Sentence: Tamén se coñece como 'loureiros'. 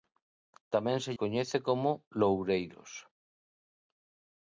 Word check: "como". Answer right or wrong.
right